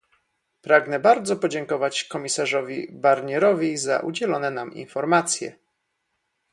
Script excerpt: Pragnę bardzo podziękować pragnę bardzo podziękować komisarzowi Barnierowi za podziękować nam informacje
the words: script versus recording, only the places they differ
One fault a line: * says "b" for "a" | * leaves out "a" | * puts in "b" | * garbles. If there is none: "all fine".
* leaves out "pragnę bardzo podziękować"
* says "udzielone" for "podziękować"